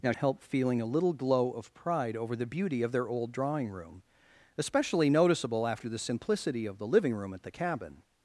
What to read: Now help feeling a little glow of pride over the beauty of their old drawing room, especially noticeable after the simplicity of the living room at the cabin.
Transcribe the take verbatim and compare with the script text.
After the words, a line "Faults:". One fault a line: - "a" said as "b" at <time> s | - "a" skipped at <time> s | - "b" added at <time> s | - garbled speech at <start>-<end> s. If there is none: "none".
Now help feeling a little glow of pride over the beauty of their old drawing room, especially noticeable after the simplicity of the living room at the cabin.
Faults:
none